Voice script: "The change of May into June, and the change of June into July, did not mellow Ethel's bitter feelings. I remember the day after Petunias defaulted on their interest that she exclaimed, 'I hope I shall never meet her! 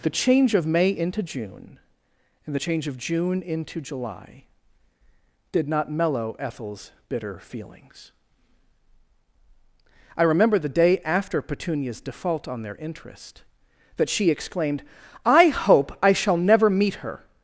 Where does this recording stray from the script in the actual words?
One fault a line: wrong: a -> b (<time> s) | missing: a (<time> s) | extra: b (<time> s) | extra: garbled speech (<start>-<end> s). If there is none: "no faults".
wrong: defaulted -> default (12.0 s)